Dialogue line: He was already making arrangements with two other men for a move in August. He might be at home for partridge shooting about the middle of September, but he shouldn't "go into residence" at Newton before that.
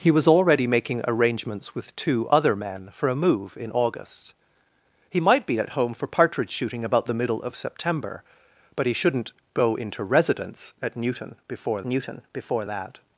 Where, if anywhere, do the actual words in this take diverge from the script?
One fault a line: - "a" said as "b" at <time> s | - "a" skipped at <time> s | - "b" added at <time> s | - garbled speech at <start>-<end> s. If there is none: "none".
- "Newton before" added at 11.9 s